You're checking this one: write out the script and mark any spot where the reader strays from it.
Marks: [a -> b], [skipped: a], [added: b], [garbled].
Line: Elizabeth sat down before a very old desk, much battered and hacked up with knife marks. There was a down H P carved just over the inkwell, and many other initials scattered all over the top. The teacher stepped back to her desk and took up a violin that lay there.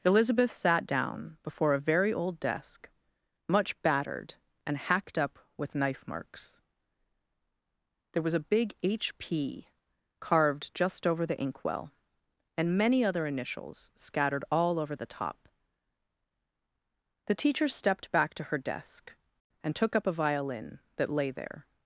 Elizabeth sat down before a very old desk, much battered and hacked up with knife marks. There was a [down -> big] H P carved just over the inkwell, and many other initials scattered all over the top. The teacher stepped back to her desk and took up a violin that lay there.